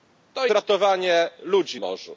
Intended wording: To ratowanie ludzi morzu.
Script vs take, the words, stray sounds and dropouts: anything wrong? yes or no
no